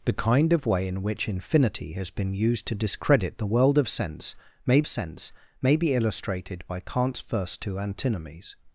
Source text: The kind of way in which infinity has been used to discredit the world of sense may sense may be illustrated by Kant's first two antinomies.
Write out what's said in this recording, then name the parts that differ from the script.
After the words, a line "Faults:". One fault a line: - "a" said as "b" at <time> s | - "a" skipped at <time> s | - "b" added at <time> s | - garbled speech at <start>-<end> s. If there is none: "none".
The kind of way in which infinity has been used to discredit the world of sense may sense may be illustrated by Kant's first two antinomies.
Faults:
none